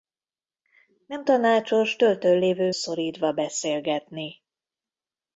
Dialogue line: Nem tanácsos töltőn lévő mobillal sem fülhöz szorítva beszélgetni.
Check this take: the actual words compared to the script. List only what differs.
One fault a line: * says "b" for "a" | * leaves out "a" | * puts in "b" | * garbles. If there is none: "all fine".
* leaves out "mobillal sem fülhöz"